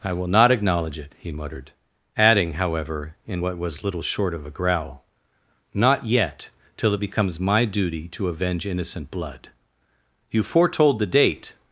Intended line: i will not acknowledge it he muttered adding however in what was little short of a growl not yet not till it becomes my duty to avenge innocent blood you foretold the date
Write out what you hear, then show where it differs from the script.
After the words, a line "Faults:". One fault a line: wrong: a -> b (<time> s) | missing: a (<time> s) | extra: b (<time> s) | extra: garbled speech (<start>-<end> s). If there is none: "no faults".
i will not acknowledge it he muttered adding however in what was little short of a growl not yet till it becomes my duty to avenge innocent blood you foretold the date
Faults:
missing: not (6.5 s)